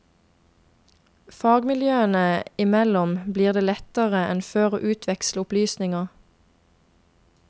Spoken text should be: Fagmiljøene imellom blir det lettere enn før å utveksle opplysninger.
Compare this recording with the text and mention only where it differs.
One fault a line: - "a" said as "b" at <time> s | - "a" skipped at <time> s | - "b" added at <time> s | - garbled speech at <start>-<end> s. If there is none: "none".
none